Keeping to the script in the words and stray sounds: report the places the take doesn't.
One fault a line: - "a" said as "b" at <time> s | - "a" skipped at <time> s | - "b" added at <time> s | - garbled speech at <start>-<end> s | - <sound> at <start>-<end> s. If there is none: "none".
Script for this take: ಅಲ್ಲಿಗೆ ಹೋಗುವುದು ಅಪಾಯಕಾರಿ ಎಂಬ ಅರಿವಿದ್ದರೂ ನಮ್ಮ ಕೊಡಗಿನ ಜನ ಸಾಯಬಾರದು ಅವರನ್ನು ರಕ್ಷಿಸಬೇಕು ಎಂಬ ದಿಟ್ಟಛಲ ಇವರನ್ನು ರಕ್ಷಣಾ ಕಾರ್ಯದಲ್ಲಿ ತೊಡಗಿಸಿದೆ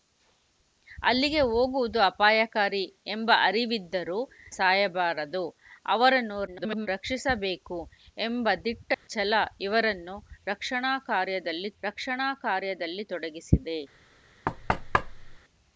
- "ನಮ್ಮ ಕೊಡಗಿನ ಜನ" skipped at 4.2 s
- garbled speech at 6.5-6.9 s
- dropout at 8.9-9.1 s
- "ರಕ್ಷಣಾ ಕಾರ್ಯದಲ್ಲಿ" added at 11.8 s
- thud at 14.4-15.4 s